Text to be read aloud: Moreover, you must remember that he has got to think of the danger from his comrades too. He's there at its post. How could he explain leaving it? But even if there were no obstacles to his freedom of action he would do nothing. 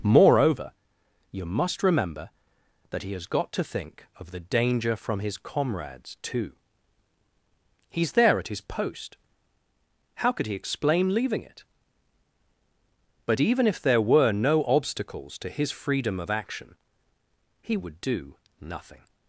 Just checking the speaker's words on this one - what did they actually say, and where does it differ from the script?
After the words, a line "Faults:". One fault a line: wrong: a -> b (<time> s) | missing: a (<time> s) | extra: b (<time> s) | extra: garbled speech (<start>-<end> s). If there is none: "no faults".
Moreover, you must remember that he has got to think of the danger from his comrades too. He's there at his post. How could he explain leaving it? But even if there were no obstacles to his freedom of action he would do nothing.
Faults:
wrong: its -> his (8.5 s)